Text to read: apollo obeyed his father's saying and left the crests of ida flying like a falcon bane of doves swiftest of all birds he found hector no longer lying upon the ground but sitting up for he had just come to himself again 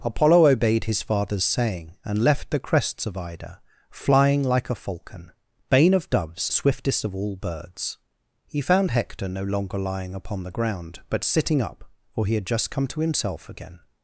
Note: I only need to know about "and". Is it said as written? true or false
true